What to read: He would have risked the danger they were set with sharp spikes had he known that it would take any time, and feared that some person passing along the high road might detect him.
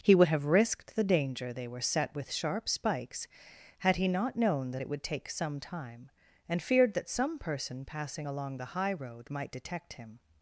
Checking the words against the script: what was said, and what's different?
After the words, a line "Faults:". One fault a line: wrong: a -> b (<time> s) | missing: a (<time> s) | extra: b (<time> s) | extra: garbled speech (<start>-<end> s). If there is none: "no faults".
He would have risked the danger they were set with sharp spikes had he not known that it would take some time, and feared that some person passing along the high road might detect him.
Faults:
extra: not (4.1 s)
wrong: any -> some (5.3 s)